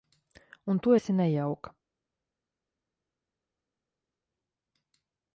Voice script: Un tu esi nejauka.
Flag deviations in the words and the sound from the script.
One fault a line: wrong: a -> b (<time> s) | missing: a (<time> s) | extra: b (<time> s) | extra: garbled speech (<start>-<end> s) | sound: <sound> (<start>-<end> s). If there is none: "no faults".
no faults